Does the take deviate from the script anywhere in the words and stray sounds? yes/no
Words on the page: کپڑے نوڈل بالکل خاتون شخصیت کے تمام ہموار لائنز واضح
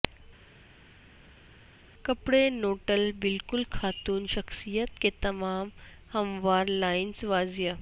no